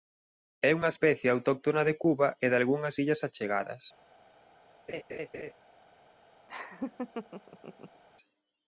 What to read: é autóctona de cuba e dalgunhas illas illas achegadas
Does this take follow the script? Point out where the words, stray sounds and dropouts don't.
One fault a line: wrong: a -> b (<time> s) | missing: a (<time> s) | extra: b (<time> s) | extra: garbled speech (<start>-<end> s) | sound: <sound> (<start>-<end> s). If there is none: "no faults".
extra: unha especie (0.8 s)
missing: illas (3.2 s)
sound: laugh (4.9-5.5 s)
sound: laugh (6.5-8.0 s)